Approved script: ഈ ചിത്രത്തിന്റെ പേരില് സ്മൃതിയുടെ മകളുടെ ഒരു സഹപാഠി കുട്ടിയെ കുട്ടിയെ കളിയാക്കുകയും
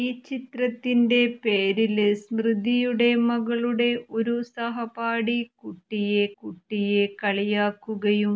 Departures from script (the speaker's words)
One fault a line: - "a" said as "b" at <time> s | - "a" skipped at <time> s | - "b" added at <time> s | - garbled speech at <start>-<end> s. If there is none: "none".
none